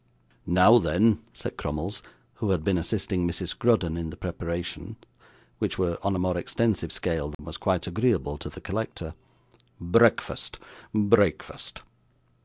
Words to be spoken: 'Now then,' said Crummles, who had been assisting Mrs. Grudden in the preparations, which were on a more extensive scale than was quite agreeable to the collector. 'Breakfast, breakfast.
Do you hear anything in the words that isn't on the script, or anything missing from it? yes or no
no